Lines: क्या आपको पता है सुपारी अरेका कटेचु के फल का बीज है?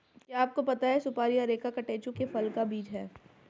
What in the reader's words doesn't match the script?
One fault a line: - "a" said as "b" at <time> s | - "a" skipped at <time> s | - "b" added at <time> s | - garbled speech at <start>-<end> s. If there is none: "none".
none